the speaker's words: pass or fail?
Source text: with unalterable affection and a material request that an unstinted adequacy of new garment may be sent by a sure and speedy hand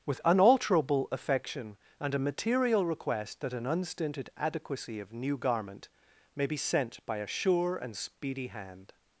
pass